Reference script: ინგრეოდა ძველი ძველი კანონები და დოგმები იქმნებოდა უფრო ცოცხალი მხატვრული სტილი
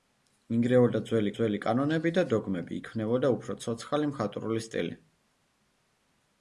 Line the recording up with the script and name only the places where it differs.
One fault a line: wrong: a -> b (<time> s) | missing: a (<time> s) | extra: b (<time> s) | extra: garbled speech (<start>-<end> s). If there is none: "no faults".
no faults